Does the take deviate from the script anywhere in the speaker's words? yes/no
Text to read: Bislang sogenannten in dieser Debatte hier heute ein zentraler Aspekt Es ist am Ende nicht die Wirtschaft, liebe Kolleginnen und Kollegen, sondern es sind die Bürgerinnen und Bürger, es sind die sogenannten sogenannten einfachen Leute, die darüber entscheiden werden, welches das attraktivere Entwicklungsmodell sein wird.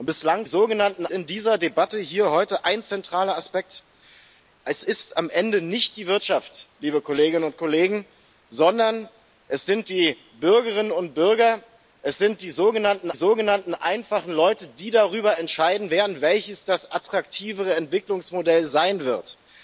no